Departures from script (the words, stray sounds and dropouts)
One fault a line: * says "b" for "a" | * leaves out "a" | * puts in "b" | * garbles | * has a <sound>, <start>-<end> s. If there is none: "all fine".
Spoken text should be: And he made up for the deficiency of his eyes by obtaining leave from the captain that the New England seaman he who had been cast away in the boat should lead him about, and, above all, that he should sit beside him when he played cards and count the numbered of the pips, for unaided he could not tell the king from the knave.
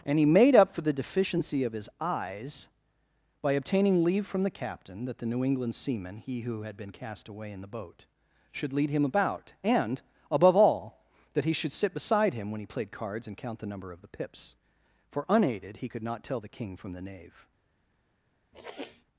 * says "number" for "numbered"
* has a sniff, 18.5-19.0 s